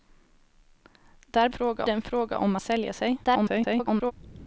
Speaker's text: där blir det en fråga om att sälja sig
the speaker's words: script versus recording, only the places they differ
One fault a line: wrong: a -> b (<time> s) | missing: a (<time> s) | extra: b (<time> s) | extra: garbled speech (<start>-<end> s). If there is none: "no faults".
wrong: blir -> fråga (1.5 s)
missing: att (2.6 s)
extra: garbled speech (3.2-4.1 s)